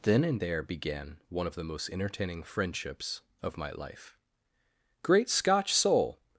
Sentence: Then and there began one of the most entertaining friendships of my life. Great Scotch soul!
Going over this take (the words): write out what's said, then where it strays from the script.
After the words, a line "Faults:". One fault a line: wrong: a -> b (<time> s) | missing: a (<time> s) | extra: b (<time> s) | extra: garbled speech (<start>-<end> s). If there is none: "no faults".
Then and there began one of the most entertaining friendships of my life. Great Scotch soul!
Faults:
no faults